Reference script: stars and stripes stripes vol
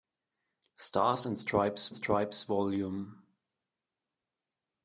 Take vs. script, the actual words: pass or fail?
pass